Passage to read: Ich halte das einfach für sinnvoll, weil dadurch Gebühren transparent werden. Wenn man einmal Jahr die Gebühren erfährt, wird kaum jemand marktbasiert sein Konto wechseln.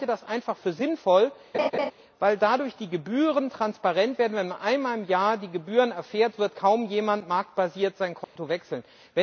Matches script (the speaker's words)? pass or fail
fail